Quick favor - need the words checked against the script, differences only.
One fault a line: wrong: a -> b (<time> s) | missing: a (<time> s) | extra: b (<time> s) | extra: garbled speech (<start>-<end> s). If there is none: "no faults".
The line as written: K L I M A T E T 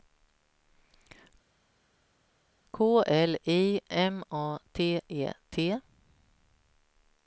no faults